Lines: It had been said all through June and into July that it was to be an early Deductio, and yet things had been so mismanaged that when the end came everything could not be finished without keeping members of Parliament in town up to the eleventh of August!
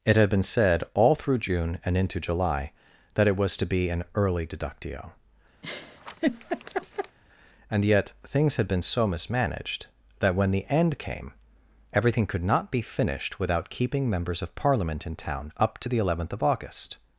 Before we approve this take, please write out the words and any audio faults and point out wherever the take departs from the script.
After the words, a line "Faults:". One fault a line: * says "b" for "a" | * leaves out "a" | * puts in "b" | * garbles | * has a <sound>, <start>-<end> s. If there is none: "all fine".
It had been said all through June and into July that it was to be an early Deductio, and yet things had been so mismanaged that when the end came everything could not be finished without keeping members of Parliament in town up to the eleventh of August!
Faults:
* has a laugh, 5.6-7.2 s